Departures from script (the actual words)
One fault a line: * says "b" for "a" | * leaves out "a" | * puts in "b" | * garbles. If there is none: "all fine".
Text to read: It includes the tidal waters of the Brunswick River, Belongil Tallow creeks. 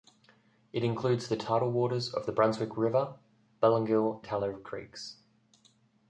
all fine